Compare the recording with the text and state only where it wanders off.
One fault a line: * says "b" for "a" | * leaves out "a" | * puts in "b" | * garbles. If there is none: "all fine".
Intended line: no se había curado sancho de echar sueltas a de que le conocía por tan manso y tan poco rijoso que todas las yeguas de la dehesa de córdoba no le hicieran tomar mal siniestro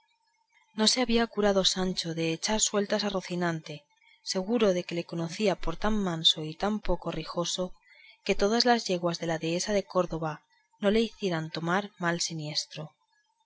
* puts in "rocinante seguro"